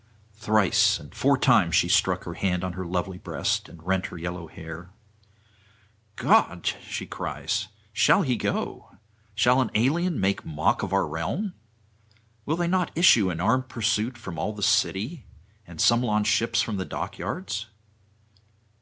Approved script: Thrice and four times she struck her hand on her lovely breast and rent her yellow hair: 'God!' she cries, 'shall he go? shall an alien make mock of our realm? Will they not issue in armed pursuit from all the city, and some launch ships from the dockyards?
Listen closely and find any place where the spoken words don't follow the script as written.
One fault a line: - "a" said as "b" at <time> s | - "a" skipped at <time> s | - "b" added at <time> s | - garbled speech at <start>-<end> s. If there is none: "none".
none